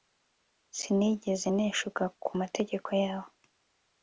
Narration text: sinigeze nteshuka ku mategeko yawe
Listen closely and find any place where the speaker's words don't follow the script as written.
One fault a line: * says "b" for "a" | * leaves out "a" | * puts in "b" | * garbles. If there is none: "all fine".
all fine